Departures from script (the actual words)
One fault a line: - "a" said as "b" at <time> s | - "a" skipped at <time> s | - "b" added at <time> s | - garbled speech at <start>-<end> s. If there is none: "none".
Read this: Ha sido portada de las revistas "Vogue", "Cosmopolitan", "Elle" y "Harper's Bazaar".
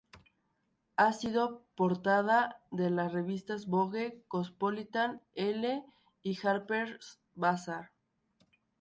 none